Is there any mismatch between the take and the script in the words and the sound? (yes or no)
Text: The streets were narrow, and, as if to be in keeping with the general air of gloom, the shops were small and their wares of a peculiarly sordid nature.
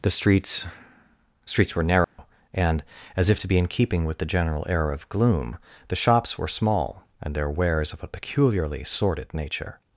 yes